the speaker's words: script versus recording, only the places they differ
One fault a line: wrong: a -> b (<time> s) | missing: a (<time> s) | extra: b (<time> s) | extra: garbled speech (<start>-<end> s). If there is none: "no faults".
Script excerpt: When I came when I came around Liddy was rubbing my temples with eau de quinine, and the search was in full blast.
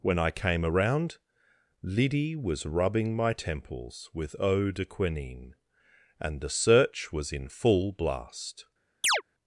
missing: when I came (0.7 s)